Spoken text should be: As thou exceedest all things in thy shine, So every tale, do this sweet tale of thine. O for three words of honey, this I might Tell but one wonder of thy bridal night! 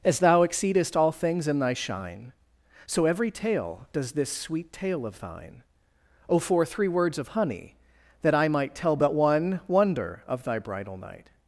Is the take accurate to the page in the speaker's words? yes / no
no